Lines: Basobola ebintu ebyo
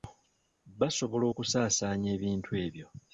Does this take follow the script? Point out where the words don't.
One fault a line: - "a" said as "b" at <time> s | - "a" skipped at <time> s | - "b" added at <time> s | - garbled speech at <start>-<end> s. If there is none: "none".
- "okusaasaanya" added at 1.3 s